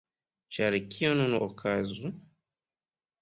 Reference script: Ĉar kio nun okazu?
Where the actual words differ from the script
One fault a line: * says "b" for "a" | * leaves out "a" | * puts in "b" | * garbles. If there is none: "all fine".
all fine